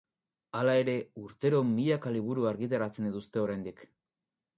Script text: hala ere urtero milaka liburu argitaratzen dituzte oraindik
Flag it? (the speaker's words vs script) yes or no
no